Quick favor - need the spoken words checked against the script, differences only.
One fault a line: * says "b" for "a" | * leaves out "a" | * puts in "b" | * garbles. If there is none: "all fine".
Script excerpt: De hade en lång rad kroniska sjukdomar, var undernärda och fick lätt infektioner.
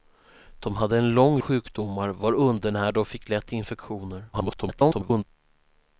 * leaves out "rad kroniska"
* garbles